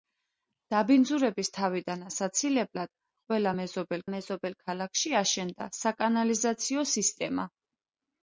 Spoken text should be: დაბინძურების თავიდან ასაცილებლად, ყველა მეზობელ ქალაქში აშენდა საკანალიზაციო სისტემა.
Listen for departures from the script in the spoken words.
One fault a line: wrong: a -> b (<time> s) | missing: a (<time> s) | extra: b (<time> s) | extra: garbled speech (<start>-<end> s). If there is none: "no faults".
extra: მეზობელ (4.1 s)